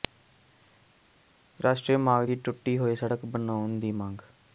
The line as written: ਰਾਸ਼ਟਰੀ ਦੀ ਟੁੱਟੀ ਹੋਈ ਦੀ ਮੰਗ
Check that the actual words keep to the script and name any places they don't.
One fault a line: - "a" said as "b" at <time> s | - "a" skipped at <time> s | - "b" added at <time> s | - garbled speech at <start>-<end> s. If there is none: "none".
- "ਮਾਰਗ" added at 2.0 s
- "ਸੜਕ ਬਣਾਉਣ" added at 2.9 s